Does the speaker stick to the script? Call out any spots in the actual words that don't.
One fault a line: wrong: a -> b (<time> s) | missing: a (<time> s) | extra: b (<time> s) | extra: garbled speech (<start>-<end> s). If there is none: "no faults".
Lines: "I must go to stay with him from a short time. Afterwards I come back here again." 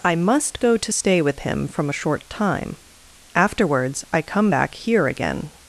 no faults